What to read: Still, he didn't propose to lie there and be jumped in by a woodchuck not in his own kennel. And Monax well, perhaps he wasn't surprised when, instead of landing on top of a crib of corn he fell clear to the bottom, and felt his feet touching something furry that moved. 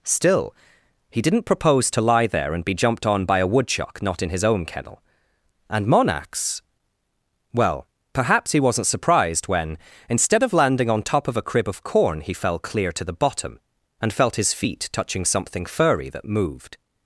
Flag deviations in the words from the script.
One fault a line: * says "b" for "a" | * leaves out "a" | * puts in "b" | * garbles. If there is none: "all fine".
* says "on" for "in"